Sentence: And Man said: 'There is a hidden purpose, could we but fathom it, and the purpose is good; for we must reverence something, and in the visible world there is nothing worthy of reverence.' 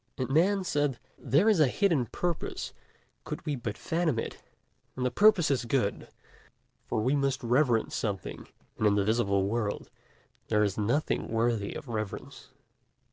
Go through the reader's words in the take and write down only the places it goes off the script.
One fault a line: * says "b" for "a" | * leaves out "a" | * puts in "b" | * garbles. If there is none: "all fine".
all fine